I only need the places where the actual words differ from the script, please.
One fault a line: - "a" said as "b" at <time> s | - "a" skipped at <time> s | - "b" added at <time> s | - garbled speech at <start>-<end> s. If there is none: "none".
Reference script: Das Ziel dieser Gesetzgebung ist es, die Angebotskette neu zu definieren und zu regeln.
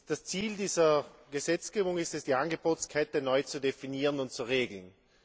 none